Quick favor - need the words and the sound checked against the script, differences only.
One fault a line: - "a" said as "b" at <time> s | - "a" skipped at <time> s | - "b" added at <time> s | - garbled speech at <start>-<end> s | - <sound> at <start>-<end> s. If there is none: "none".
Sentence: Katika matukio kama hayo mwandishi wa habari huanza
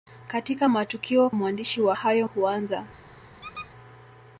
- "kama hayo" skipped at 1.3 s
- "habari" said as "hayo" at 1.9 s
- squeak at 3.4-3.7 s